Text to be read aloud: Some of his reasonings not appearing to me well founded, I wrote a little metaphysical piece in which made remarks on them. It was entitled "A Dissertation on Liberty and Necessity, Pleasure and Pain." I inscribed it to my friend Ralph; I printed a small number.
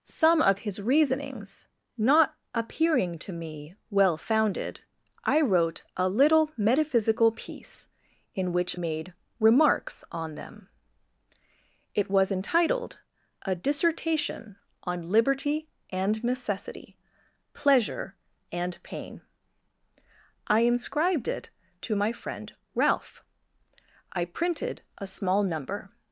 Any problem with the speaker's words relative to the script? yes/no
no